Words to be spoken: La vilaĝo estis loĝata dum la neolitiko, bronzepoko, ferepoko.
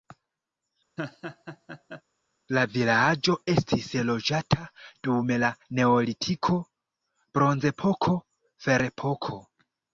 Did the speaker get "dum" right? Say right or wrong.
right